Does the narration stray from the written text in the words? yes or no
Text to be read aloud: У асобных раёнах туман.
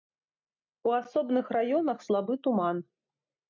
yes